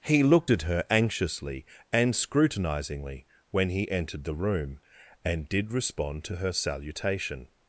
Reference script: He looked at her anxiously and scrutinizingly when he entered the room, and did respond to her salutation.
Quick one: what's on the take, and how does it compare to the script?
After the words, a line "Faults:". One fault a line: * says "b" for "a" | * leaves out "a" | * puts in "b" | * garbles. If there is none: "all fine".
He looked at her anxiously and scrutinizingly when he entered the room, and did respond to her salutation.
Faults:
all fine